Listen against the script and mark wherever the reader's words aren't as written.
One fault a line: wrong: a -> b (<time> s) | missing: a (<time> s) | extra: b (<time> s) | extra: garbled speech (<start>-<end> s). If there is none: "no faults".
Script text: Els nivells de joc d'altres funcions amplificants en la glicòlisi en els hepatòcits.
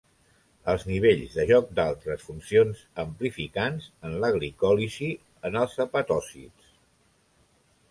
no faults